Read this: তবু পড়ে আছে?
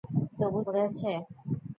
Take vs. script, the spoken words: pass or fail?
pass